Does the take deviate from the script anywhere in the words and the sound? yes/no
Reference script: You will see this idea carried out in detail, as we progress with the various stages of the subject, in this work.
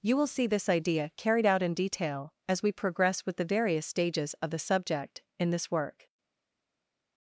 no